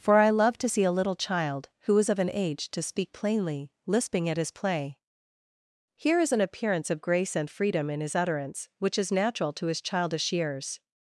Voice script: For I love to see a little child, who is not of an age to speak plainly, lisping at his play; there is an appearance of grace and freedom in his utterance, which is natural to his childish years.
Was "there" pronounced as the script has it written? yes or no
no